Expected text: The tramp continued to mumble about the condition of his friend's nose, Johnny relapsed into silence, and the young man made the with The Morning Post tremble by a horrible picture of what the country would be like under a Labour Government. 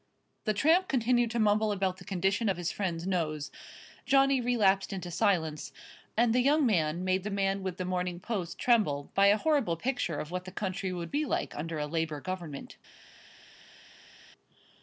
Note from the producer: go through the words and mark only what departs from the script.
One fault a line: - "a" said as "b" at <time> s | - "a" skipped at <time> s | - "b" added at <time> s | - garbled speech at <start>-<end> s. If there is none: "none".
- "man" added at 7.3 s